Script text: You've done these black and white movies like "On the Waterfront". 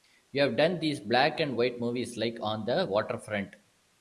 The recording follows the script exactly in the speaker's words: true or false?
true